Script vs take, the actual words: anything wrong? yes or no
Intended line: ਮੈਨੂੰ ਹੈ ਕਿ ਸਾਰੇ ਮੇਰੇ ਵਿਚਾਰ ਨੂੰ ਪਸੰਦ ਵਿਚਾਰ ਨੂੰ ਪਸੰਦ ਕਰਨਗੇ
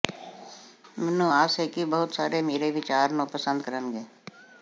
yes